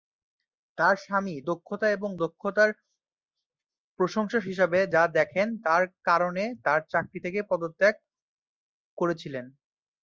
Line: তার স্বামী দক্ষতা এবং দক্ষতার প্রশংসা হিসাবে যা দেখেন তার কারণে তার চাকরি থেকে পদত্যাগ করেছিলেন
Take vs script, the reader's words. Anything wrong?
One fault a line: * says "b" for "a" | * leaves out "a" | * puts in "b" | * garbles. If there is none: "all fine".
all fine